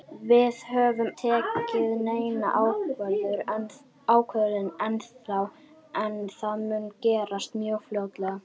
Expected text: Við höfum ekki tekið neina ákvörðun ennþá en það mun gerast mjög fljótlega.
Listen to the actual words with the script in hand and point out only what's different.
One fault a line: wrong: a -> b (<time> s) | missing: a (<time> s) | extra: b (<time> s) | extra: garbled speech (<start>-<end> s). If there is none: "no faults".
missing: ekki (1.1 s)